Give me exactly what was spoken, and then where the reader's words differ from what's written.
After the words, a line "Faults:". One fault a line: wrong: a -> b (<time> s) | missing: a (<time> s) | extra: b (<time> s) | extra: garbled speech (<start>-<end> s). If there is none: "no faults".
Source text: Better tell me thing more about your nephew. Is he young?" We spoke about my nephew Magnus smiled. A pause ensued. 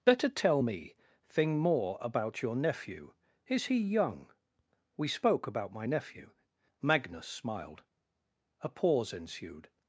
Better tell me thing more about your nephew. Is he young?" We spoke about my nephew Magnus smiled. A pause ensued.
Faults:
no faults